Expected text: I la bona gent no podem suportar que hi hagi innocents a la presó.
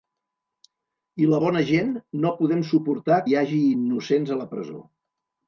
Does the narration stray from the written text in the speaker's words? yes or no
yes